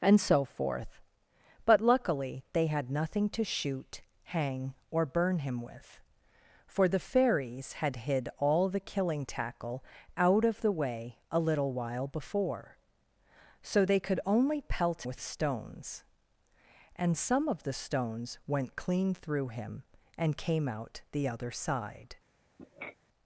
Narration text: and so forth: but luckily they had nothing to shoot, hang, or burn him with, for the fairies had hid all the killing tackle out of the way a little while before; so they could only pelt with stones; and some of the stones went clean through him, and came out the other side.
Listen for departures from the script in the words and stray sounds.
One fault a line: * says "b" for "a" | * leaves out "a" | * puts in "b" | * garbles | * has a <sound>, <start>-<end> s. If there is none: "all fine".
* has a sniff, 22.6-23.0 s